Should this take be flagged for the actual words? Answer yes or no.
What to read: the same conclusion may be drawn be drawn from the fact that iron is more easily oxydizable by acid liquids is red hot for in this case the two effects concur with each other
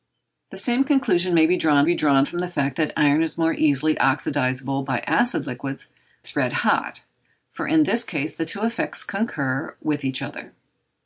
no